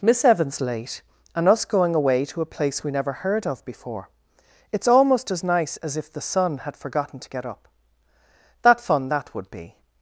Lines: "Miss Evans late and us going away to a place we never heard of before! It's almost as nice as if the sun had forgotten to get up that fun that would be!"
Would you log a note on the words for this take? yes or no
no